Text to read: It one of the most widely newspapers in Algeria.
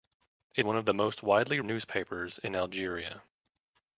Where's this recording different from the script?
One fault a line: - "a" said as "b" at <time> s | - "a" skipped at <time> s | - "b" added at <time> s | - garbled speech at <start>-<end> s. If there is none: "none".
none